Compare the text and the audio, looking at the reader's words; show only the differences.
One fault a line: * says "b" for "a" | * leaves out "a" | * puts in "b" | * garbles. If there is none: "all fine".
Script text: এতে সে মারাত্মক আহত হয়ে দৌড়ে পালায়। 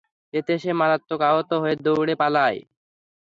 all fine